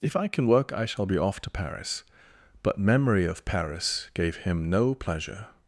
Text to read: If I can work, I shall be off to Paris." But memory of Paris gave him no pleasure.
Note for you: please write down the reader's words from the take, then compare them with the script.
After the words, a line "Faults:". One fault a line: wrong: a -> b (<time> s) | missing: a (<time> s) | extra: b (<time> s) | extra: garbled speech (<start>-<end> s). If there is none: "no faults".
If I can work, I shall be off to Paris." But memory of Paris gave him no pleasure.
Faults:
no faults